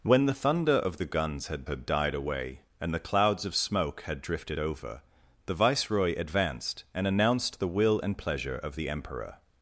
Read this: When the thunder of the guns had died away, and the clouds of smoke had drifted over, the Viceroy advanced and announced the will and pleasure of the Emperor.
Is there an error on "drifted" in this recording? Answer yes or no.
no